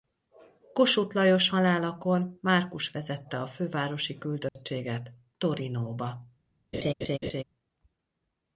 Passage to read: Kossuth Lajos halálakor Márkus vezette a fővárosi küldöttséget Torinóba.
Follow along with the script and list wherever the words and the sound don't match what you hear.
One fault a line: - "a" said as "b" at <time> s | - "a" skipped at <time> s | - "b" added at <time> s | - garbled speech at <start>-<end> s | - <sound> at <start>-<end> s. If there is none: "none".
- dropout at 4.5-4.6 s
- laugh at 6.7-7.4 s